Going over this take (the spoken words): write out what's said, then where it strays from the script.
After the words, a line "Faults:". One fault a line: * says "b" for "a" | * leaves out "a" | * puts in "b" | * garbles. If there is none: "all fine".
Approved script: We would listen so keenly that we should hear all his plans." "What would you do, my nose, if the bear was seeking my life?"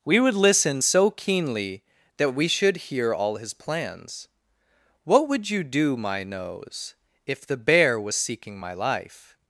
We would listen so keenly that we should hear all his plans." "What would you do, my nose, if the bear was seeking my life?"
Faults:
all fine